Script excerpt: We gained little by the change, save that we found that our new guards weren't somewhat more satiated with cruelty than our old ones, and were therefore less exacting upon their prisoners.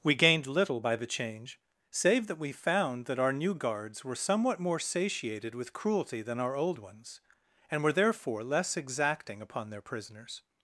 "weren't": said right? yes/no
no